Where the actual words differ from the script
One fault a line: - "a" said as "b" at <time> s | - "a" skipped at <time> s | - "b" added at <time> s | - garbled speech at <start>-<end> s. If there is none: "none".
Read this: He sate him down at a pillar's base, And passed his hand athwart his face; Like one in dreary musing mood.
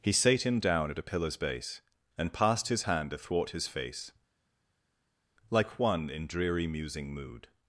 none